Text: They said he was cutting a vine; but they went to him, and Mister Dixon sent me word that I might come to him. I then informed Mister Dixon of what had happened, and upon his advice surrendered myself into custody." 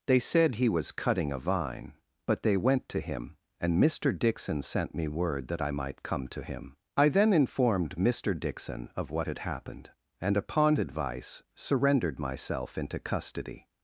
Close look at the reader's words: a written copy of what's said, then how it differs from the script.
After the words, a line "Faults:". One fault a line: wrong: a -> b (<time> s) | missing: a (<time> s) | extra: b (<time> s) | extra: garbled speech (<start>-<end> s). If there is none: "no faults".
They said he was cutting a vine; but they went to him, and Mister Dixon sent me word that I might come to him. I then informed Mister Dixon of what had happened, and upon advice surrendered myself into custody."
Faults:
missing: his (10.8 s)